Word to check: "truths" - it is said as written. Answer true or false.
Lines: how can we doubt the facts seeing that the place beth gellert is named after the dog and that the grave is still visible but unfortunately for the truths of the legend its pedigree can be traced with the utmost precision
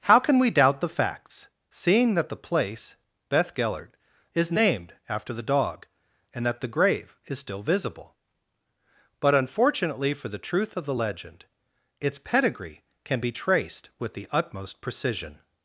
false